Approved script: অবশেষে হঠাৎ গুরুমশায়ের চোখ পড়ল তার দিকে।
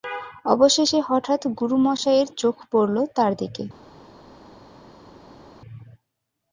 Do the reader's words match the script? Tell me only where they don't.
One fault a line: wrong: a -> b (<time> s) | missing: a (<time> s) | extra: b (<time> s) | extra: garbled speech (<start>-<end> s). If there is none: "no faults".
no faults